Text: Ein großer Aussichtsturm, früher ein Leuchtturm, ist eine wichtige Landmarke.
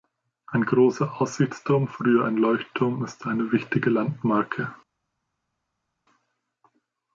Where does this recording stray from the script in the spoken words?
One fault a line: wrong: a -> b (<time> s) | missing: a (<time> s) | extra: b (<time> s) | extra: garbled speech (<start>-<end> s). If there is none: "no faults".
no faults